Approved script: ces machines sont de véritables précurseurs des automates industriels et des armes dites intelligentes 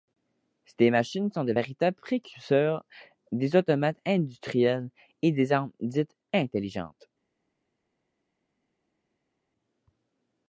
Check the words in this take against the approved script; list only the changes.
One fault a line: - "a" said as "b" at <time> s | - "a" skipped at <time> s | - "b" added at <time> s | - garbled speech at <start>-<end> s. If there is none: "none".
none